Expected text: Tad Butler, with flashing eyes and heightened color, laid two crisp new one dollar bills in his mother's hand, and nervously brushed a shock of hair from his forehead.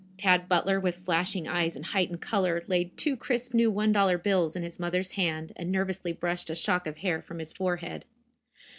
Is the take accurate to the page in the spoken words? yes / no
yes